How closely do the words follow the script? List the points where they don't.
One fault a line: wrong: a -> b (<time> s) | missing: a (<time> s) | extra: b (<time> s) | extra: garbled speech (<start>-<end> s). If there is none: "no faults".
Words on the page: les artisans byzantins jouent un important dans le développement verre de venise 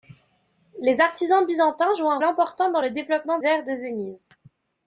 no faults